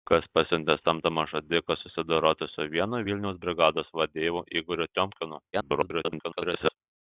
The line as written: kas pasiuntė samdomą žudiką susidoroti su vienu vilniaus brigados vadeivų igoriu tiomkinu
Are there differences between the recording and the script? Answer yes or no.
yes